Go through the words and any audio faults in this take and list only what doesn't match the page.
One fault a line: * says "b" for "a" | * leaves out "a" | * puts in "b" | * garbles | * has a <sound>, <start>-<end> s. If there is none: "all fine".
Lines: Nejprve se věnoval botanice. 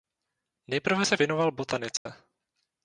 * has a dropout, 2.0-2.1 s